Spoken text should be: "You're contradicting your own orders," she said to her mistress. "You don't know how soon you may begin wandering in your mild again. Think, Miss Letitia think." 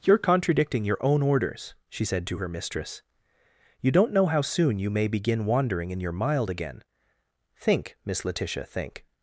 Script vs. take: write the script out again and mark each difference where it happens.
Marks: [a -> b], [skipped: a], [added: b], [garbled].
"You're contradicting your own orders," she said to her mistress. "You don't know how soon you may begin wandering in your mild again. Think, Miss Letitia think."